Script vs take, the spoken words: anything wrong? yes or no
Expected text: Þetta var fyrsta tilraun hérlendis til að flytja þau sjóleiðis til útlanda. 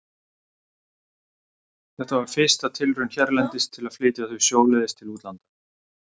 no